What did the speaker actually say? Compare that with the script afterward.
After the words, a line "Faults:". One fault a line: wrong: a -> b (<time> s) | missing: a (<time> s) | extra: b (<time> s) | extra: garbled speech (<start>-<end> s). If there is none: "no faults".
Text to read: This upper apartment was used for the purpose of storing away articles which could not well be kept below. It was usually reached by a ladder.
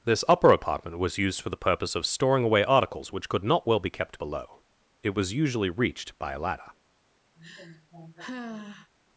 This upper apartment was used for the purpose of storing away articles which could not well be kept below. It was usually reached by a ladder.
Faults:
no faults